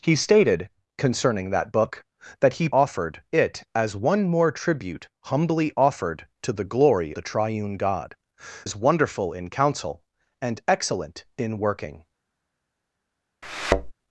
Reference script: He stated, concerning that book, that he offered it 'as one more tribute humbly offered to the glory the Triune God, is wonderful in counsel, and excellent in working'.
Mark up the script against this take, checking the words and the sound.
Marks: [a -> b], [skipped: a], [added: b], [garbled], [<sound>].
He stated, concerning that book, that he offered it 'as one more tribute humbly offered to the glory the Triune God, is wonderful in counsel, and excellent in working'. [thud]